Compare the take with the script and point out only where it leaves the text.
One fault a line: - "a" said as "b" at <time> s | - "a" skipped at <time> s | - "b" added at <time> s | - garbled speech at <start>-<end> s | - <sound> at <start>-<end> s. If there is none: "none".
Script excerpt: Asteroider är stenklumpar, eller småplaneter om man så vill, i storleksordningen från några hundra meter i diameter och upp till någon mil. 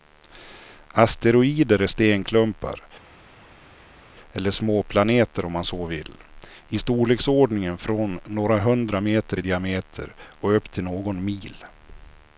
none